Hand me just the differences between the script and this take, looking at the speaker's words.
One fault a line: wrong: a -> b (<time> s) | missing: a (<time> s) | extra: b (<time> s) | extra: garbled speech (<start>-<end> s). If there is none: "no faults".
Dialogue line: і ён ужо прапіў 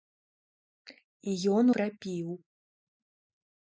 missing: ужо (1.6 s)